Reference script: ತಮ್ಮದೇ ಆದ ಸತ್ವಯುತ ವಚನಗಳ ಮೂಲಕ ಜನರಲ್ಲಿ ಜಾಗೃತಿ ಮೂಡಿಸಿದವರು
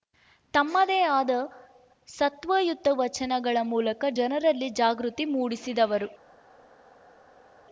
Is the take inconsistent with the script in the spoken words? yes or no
no